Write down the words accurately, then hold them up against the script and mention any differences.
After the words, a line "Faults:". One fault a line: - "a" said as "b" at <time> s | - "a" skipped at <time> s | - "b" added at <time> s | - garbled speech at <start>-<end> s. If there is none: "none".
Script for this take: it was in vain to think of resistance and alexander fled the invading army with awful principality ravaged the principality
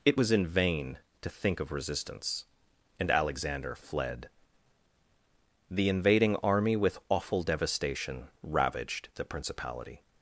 it was in vain to think of resistance and alexander fled the invading army with awful devastation ravaged the principality
Faults:
- "principality" said as "devastation" at 7.4 s